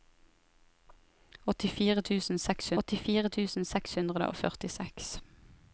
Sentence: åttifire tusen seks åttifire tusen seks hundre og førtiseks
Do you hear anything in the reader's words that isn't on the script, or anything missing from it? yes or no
no